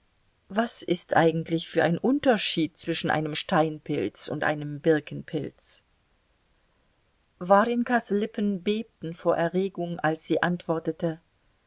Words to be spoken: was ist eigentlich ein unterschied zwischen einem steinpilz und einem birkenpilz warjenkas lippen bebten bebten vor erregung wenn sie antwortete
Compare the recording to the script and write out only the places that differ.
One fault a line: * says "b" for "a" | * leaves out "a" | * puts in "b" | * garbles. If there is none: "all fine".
* puts in "für"
* leaves out "bebten"
* says "als" for "wenn"